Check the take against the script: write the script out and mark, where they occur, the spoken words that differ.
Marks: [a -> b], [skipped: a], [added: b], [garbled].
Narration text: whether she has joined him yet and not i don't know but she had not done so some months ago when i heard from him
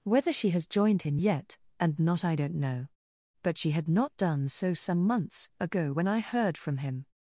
whether she has joined him yet and not i don't know but she had not done so some months ago when i heard from him